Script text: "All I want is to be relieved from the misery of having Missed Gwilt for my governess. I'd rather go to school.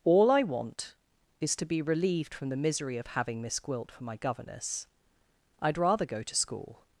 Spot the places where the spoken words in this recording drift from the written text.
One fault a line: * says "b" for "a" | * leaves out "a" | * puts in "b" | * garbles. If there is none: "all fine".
* says "Miss" for "Missed"